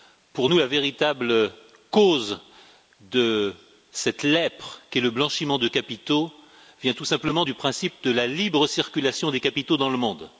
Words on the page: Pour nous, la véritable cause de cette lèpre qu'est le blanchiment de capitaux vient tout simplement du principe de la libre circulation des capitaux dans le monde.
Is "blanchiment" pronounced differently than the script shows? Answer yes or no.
no